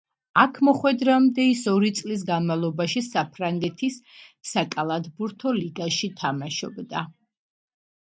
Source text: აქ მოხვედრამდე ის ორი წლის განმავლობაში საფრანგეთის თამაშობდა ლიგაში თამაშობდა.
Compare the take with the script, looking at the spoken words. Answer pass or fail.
fail